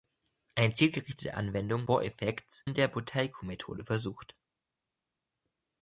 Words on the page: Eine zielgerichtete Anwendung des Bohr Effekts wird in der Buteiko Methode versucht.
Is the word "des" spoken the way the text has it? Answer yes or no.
no